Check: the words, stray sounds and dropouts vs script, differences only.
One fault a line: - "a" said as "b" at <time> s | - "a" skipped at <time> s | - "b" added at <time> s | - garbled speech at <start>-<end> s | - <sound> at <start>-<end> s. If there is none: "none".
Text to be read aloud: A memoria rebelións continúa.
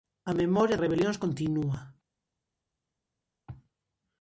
none